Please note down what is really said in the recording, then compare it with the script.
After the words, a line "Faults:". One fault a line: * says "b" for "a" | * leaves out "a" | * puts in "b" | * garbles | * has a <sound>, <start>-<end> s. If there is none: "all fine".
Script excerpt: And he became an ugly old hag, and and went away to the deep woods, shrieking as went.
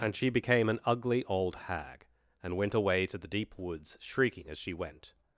And she became an ugly old hag, and went away to the deep woods, shrieking as she went.
Faults:
* says "she" for "he"
* leaves out "and"
* puts in "she"